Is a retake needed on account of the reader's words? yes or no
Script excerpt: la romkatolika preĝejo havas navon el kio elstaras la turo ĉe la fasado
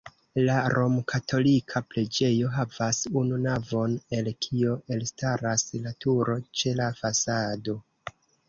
yes